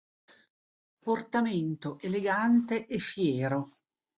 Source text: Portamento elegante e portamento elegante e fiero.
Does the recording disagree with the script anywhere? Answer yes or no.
yes